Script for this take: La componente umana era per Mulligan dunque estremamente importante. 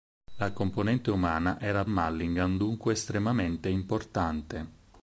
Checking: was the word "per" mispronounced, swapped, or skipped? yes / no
yes